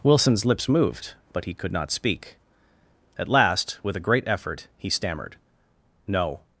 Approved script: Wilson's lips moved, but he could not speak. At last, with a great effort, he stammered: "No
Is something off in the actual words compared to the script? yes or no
no